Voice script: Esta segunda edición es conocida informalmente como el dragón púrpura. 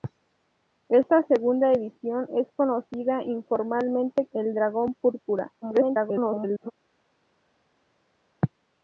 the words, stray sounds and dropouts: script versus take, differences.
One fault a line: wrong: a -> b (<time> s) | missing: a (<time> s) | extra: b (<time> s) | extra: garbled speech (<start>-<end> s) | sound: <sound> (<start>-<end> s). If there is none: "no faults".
missing: como (4.3 s)
extra: garbled speech (5.6-6.7 s)